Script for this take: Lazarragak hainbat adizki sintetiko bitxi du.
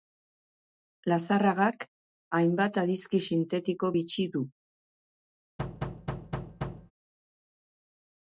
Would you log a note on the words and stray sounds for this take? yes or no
yes